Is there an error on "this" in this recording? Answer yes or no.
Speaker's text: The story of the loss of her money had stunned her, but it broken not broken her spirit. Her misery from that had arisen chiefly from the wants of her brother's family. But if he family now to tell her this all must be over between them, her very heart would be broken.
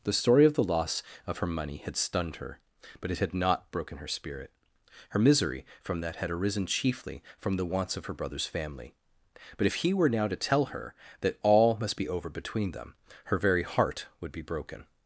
yes